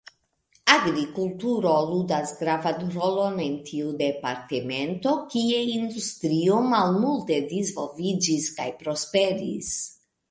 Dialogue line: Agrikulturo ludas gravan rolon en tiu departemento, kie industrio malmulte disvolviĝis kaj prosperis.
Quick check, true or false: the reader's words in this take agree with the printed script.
true